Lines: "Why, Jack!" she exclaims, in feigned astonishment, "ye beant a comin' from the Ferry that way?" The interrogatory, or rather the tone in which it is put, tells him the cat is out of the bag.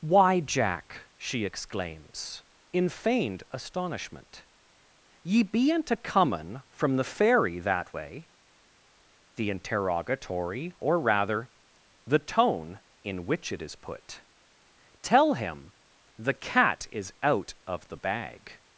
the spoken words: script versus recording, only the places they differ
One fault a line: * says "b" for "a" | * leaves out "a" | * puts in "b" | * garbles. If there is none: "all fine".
* says "tell" for "tells"